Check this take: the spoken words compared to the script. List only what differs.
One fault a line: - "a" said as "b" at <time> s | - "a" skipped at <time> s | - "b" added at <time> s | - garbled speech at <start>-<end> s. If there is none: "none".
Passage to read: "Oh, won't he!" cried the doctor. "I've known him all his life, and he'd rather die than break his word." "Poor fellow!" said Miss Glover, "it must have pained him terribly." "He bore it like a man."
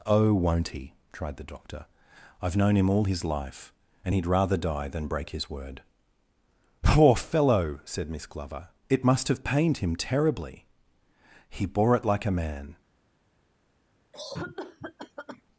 - "cried" said as "tried" at 1.1 s